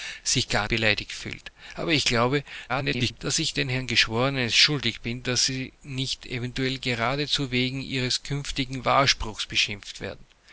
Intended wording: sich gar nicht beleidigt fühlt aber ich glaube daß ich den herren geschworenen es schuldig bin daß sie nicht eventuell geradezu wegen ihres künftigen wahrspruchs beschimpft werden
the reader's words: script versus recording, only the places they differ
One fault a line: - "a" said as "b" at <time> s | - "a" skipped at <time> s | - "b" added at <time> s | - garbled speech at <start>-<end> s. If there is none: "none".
- "nicht" skipped at 0.7 s
- garbled speech at 2.7-3.2 s